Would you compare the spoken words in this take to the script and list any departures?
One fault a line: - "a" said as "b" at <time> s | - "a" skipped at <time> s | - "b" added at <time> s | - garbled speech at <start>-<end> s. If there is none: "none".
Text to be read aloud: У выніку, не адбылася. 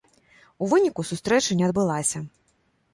- "сустрэча" added at 1.1 s